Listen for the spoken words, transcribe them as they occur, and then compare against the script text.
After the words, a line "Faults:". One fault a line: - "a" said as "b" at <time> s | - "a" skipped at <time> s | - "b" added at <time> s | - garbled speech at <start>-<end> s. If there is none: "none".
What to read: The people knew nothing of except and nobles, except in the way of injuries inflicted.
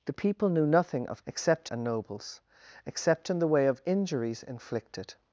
The people knew nothing of except and nobles, except in the way of injuries inflicted.
Faults:
none